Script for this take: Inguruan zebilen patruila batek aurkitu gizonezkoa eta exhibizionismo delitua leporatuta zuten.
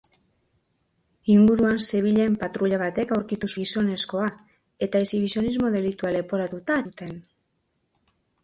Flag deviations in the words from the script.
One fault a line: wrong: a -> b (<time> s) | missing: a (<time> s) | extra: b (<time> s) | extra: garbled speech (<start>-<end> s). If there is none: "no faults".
no faults